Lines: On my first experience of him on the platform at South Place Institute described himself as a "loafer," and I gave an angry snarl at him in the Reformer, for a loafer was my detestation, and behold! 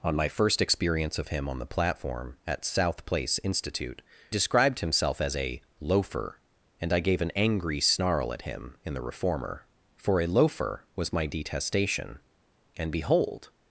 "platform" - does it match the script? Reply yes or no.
yes